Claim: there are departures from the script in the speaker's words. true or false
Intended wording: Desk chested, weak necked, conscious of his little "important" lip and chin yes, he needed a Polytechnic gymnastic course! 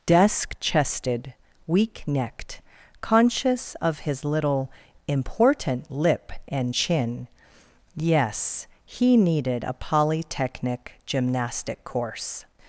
false